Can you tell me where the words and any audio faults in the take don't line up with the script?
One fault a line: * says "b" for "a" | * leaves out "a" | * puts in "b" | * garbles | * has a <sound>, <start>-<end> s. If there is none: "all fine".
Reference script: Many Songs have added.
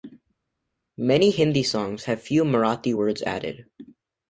* puts in "Hindi"
* puts in "few Marathi words"